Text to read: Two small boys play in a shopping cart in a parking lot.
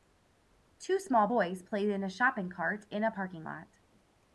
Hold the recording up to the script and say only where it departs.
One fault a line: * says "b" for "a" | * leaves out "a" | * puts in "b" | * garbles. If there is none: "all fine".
all fine